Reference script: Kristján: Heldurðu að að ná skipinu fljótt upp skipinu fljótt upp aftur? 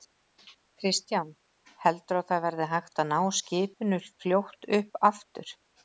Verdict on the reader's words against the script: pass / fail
fail